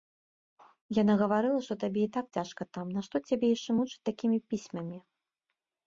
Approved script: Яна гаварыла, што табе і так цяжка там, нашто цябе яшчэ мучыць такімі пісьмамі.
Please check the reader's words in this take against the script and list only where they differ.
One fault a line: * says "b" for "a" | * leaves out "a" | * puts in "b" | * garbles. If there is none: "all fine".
all fine